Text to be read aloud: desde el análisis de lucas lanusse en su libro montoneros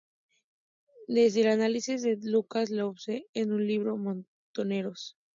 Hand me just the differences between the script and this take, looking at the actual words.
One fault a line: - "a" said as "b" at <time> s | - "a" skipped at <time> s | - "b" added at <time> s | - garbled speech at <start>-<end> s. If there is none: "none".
none